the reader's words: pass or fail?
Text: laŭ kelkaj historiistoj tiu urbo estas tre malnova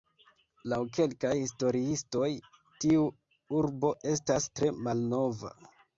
pass